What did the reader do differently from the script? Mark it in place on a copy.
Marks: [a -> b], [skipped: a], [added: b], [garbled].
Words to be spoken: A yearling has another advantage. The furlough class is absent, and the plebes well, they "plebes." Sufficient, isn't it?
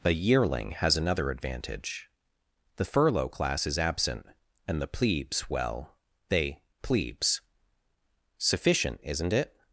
A yearling has another advantage. The furlough class is absent, and the plebes well, they "plebes." Sufficient, isn't it?